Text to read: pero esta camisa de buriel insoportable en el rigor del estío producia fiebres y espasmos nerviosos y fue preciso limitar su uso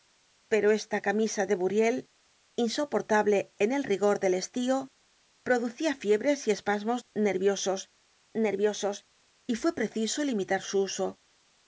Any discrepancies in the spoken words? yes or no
yes